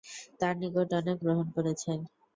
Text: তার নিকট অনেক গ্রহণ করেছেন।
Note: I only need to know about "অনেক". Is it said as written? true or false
true